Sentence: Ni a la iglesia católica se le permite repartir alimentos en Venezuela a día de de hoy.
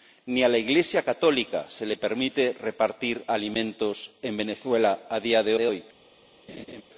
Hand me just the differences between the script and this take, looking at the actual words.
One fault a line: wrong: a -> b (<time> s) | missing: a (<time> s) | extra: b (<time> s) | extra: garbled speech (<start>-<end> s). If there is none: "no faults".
no faults